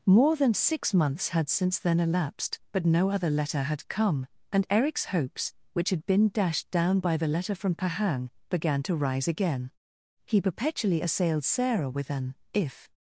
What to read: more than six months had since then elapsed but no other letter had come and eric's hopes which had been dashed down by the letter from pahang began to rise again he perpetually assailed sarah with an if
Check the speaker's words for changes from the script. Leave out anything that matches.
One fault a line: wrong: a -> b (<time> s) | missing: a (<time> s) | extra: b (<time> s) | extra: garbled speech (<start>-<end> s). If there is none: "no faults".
no faults